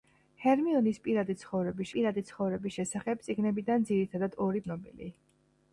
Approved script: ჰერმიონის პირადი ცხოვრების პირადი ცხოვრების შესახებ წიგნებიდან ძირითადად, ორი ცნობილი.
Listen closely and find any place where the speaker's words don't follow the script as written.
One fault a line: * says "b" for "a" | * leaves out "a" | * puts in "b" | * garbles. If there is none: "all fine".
all fine